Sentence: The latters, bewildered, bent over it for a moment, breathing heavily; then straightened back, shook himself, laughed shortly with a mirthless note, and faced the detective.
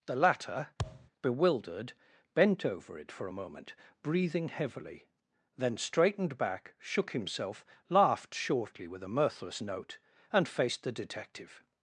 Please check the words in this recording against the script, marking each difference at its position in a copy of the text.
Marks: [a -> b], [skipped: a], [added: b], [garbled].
The [latters, -> latter] bewildered, bent over it for a moment, breathing heavily; then straightened back, shook himself, laughed shortly with a mirthless note, and faced the detective.